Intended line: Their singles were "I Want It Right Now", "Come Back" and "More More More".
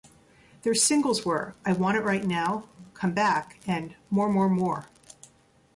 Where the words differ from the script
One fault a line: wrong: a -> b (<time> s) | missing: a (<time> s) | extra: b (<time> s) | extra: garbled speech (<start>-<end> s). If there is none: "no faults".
no faults